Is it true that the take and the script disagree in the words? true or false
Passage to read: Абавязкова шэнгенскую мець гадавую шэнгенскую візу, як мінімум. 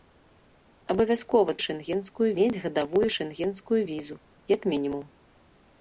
false